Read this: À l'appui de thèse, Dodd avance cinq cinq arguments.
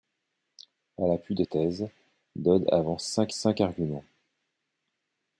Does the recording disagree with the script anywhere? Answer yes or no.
no